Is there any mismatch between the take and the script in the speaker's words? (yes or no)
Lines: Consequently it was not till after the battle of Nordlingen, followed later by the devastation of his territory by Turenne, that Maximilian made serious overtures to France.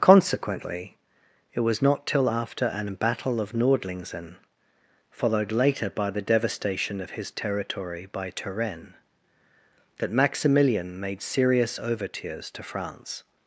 yes